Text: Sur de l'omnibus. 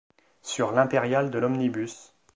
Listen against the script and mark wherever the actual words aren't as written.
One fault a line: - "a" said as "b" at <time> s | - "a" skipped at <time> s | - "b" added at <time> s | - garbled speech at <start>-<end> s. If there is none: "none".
- "l'impériale" added at 0.7 s